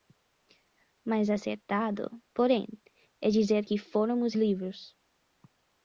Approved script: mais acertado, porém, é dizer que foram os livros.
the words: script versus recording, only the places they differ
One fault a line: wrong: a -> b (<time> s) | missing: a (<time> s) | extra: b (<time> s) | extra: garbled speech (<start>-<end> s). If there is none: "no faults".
no faults